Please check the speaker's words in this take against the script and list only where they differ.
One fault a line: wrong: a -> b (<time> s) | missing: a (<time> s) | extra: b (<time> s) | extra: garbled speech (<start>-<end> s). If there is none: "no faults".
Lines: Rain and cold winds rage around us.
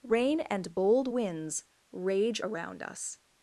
wrong: cold -> bold (0.7 s)